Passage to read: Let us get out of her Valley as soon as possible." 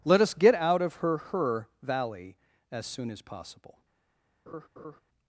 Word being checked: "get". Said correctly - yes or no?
yes